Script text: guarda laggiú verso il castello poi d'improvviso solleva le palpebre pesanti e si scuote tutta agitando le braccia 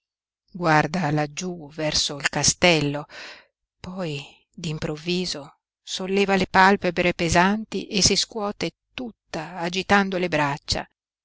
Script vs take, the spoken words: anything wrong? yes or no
no